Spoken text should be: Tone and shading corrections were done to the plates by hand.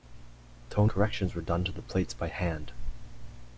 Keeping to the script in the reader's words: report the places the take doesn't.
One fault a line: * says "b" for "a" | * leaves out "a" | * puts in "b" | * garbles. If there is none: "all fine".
* leaves out "and shading"